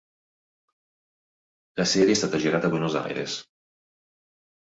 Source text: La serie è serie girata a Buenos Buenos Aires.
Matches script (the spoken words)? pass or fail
fail